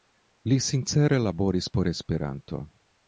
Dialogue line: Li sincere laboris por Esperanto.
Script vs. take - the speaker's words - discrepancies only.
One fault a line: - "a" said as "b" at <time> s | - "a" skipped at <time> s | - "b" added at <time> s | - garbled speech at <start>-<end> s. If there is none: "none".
none